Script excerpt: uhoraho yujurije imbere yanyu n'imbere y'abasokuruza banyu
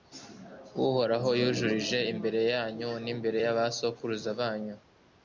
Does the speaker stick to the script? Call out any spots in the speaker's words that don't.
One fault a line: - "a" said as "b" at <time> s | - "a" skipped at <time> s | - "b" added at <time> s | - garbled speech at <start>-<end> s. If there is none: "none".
none